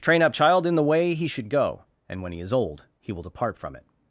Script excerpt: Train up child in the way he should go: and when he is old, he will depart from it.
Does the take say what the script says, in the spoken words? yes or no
yes